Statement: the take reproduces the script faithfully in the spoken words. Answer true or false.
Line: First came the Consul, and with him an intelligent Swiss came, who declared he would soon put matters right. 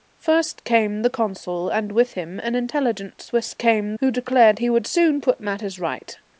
true